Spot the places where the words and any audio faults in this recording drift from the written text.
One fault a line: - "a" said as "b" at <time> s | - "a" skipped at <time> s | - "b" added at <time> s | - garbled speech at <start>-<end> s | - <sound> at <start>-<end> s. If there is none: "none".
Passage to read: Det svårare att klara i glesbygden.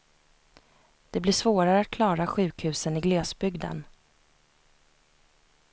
- "blir" added at 1.2 s
- "sjukhusen" added at 2.3 s